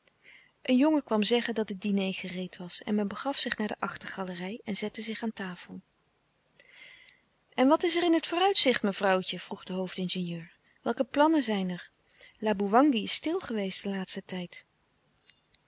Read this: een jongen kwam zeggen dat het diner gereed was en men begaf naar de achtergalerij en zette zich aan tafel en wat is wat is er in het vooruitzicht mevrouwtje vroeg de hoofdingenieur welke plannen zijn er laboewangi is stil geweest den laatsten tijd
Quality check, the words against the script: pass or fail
fail